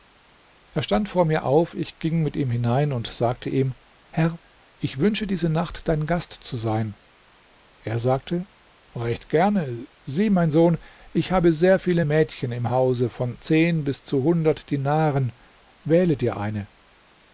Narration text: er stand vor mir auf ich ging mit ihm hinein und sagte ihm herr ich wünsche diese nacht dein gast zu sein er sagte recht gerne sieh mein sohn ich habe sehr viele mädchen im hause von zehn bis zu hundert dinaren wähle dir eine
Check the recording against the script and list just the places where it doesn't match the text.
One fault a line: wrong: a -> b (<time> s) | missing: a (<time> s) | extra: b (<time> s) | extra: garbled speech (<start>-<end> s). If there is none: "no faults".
no faults